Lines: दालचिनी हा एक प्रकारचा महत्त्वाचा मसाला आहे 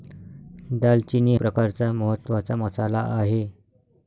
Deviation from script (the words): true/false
true